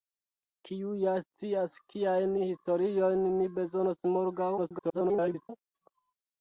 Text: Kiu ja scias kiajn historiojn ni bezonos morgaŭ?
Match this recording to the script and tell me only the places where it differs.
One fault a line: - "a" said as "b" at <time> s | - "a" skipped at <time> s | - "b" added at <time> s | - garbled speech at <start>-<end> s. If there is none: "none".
- garbled speech at 4.6-5.5 s